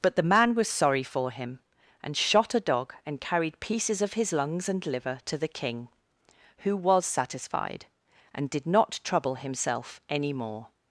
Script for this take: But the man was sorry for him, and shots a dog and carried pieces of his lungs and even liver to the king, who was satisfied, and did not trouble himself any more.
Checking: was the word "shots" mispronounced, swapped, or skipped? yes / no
yes